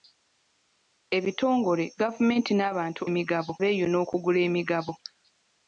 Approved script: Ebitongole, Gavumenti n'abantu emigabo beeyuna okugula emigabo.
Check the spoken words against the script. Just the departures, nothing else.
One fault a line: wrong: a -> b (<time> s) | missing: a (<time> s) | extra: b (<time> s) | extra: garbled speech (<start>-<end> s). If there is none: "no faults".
no faults